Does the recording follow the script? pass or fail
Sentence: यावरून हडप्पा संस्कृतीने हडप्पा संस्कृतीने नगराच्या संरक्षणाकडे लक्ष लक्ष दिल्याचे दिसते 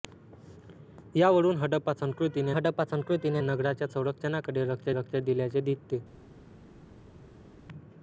pass